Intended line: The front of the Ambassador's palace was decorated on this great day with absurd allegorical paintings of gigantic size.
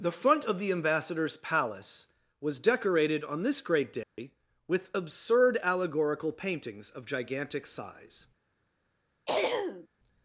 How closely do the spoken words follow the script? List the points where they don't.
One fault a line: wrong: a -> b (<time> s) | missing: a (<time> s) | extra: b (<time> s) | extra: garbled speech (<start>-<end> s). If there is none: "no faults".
no faults